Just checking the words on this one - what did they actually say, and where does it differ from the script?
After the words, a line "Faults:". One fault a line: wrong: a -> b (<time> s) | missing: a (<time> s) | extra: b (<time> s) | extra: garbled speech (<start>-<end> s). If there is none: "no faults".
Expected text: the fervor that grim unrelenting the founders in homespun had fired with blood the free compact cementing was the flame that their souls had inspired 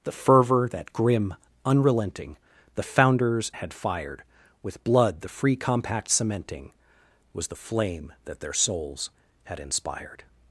the fervor that grim unrelenting the founders had fired with blood the free compact cementing was the flame that their souls had inspired
Faults:
missing: in homespun (3.5 s)